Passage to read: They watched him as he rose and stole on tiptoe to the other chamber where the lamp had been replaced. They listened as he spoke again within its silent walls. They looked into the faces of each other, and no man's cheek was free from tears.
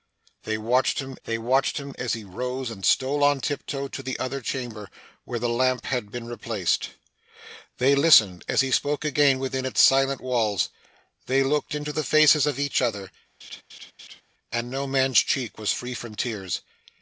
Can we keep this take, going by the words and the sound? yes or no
no